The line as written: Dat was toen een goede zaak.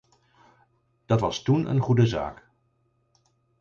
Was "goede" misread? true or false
false